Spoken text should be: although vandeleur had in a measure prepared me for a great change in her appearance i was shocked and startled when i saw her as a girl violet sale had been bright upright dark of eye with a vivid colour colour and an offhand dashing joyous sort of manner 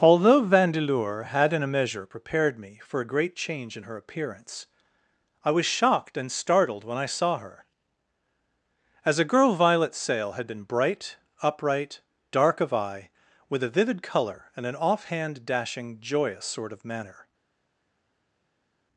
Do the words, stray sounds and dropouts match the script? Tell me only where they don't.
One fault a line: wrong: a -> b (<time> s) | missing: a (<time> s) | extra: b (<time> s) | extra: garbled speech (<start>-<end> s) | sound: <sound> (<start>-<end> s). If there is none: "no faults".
missing: colour (14.5 s)